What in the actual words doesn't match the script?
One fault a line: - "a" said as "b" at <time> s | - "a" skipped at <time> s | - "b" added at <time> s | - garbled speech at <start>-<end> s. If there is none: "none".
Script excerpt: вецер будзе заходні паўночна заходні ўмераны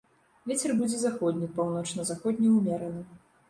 none